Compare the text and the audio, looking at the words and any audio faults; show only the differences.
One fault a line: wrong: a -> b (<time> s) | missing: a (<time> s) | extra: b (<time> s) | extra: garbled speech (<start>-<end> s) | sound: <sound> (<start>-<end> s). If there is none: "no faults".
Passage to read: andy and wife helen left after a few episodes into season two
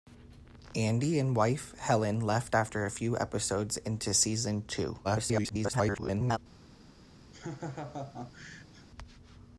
extra: garbled speech (5.0-6.4 s)
sound: laugh (7.3-8.9 s)